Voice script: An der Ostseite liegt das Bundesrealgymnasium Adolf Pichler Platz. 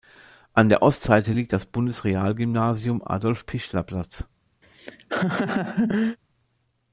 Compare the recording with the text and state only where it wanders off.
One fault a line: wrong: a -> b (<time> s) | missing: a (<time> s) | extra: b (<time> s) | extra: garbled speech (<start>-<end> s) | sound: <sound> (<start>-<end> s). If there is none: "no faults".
sound: laugh (4.6-6.2 s)